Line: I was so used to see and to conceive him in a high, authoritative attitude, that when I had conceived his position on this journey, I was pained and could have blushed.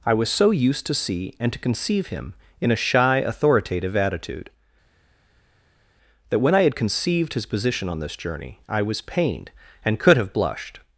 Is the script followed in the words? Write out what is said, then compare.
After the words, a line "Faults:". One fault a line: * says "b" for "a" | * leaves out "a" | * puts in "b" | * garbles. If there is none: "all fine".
I was so used to see and to conceive him in a shy, authoritative attitude, that when I had conceived his position on this journey, I was pained and could have blushed.
Faults:
* says "shy" for "high"